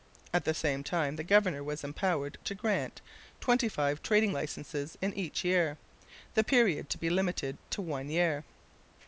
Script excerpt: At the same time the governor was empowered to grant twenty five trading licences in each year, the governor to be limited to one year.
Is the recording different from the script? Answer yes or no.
yes